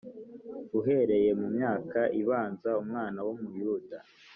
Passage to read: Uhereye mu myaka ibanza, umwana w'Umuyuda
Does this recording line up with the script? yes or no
yes